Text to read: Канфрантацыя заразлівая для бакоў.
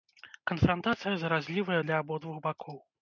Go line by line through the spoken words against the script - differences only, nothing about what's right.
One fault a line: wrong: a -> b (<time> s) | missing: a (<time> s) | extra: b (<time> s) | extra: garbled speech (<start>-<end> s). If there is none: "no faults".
extra: абодвух (2.0 s)